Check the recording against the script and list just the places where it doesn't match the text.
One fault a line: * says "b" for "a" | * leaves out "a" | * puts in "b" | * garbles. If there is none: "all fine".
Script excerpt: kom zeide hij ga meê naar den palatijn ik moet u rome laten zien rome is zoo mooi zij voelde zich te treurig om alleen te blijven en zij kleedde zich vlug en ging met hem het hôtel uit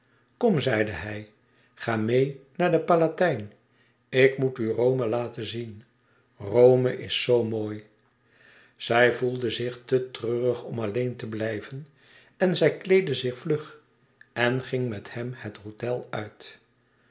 all fine